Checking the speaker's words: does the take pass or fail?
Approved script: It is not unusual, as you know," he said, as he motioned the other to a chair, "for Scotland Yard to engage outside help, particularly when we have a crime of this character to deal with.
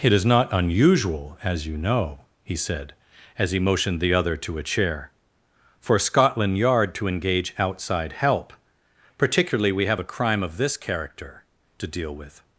fail